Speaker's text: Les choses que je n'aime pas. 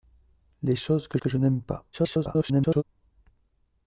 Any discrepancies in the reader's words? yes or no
yes